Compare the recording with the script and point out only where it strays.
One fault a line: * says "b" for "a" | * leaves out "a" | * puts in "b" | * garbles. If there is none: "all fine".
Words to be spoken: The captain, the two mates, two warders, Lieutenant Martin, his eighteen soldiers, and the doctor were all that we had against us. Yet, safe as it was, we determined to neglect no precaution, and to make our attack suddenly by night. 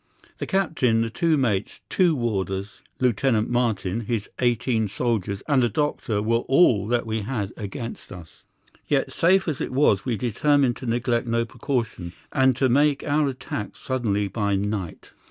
all fine